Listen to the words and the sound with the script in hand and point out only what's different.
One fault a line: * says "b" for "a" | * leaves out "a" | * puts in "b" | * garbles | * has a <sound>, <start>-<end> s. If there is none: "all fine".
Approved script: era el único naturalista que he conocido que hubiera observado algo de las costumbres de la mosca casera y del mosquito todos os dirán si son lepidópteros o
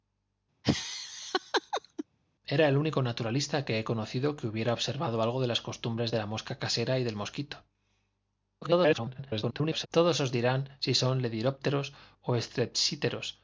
* has a laugh, 0.6-2.0 s
* garbles